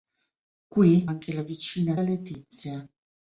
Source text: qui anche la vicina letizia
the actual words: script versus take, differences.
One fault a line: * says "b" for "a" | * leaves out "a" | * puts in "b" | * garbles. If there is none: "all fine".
all fine